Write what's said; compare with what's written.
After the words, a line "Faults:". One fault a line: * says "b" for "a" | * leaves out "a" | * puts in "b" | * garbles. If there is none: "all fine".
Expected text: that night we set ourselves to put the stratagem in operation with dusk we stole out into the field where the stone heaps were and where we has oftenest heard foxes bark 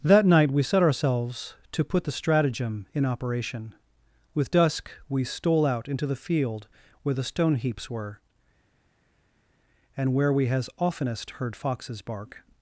that night we set ourselves to put the stratagem in operation with dusk we stole out into the field where the stone heaps were and where we has oftenest heard foxes bark
Faults:
all fine